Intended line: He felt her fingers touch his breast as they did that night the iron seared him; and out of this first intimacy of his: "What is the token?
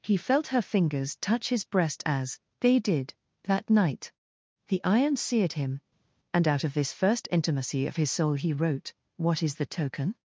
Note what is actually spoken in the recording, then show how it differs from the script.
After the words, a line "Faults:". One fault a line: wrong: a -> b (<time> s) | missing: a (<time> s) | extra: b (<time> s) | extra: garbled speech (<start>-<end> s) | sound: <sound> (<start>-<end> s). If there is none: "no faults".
He felt her fingers touch his breast as they did that night the iron seared him; and out of this first intimacy of his soul he wrote: "What is the token?
Faults:
extra: soul he wrote (8.1 s)